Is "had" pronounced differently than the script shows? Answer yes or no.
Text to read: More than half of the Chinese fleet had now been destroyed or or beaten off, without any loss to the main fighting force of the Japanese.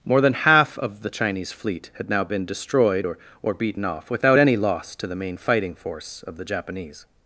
no